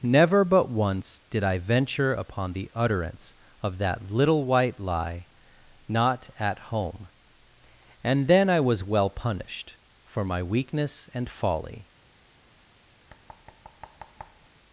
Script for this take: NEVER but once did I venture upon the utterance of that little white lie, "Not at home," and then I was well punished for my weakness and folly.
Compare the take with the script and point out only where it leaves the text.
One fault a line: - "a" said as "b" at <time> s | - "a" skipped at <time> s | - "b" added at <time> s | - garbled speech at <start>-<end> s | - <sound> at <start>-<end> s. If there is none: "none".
- thud at 13.1-14.5 s